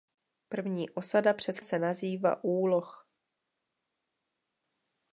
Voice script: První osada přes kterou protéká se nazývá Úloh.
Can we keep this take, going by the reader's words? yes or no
no